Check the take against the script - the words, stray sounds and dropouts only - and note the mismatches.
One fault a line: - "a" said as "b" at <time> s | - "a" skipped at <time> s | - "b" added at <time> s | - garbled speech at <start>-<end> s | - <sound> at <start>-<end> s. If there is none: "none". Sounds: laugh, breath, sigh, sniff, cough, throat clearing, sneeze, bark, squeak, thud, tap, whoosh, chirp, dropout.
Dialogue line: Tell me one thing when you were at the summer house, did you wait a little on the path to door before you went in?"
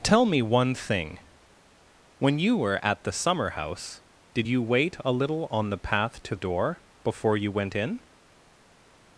none